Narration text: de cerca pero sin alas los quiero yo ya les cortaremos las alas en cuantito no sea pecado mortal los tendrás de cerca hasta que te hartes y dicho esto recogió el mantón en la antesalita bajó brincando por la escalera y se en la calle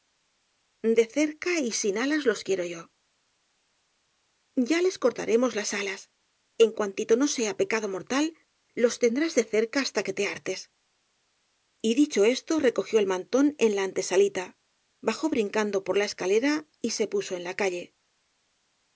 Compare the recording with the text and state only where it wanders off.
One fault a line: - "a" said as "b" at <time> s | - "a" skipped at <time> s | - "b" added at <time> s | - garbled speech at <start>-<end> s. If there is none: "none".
- "pero" said as "y" at 1.6 s
- "puso" added at 17.1 s